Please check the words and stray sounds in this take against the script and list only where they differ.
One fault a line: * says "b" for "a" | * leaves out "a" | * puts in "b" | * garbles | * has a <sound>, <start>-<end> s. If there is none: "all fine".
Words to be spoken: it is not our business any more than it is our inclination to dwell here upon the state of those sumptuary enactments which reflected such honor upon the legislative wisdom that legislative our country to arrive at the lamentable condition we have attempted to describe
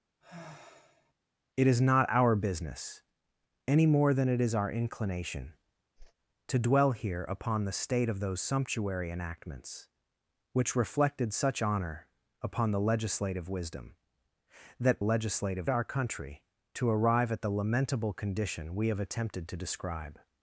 * has a sigh, 0.2-1.1 s
* has a whoosh, 6.0-6.1 s